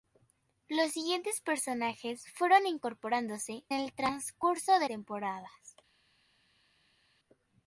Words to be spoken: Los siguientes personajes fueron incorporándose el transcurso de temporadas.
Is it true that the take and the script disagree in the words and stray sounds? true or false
false